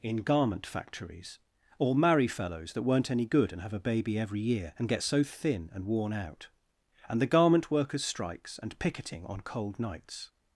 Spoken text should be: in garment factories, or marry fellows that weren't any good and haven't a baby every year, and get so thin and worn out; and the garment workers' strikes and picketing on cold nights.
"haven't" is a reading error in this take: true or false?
true